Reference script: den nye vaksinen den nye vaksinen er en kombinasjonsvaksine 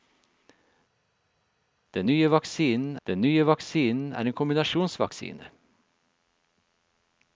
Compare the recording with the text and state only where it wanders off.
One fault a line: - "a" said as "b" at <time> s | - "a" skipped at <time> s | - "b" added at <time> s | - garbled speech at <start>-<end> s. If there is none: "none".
none